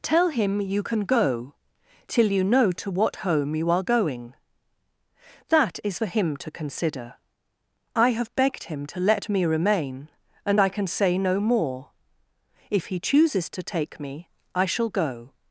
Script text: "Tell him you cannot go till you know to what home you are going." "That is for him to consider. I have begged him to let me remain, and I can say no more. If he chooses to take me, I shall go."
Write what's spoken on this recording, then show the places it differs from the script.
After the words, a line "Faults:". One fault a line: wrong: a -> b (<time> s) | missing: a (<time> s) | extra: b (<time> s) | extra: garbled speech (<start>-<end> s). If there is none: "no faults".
"Tell him you can go till you know to what home you are going." "That is for him to consider. I have begged him to let me remain, and I can say no more. If he chooses to take me, I shall go."
Faults:
wrong: cannot -> can (0.8 s)